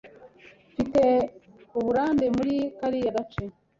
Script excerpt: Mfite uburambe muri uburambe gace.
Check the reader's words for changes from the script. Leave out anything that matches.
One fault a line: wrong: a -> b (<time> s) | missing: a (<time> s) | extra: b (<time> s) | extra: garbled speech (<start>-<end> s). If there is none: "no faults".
wrong: uburambe -> kariya (2.8 s)